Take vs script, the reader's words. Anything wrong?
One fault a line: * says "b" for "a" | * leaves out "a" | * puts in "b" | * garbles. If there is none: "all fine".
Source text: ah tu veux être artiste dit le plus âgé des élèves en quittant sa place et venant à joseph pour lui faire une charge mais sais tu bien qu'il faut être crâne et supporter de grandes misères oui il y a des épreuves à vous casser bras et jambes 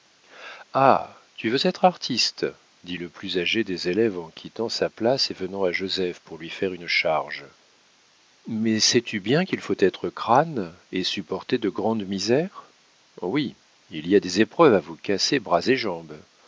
all fine